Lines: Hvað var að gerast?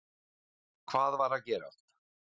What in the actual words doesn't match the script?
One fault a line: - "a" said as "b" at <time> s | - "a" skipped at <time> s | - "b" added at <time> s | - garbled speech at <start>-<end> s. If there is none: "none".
none